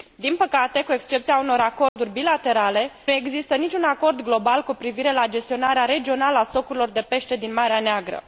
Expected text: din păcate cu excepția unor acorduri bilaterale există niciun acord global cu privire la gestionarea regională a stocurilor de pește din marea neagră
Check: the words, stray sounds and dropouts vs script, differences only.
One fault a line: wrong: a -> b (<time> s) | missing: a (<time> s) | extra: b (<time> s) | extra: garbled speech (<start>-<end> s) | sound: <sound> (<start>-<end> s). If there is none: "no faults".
sound: dropout (1.9-2.0 s)